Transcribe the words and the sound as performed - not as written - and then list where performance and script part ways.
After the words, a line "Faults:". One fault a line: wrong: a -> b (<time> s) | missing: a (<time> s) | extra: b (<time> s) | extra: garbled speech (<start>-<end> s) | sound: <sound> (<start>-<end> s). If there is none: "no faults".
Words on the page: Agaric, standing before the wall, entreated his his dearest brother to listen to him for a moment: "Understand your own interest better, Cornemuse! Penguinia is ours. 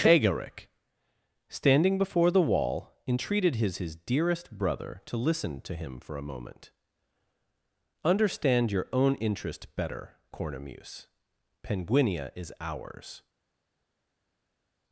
Agaric, standing before the wall, entreated his his dearest brother to listen to him for a moment: "Understand your own interest better, Cornemuse! Penguinia is ours.
Faults:
no faults